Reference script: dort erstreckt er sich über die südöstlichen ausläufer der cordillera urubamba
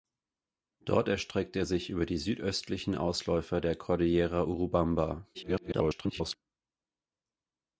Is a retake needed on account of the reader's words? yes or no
yes